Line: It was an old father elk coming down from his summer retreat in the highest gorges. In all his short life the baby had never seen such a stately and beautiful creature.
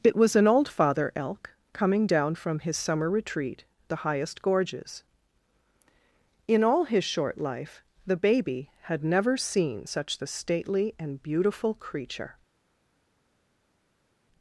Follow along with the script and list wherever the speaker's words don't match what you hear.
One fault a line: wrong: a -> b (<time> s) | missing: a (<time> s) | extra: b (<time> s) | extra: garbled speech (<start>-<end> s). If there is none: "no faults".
missing: in (3.6 s)
wrong: a -> the (10.2 s)